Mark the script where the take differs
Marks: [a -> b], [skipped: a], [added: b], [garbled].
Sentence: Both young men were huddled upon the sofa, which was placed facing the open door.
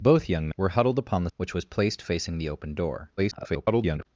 Both young [skipped: men] were huddled upon the [skipped: sofa,] which was placed facing the open door. [garbled]